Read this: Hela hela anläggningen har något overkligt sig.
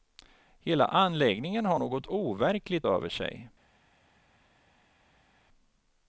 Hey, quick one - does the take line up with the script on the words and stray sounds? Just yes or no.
no